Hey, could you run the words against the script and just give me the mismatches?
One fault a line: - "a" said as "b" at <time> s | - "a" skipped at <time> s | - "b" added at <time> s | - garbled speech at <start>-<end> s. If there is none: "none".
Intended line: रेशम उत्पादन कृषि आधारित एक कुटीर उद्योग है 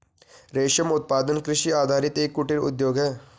none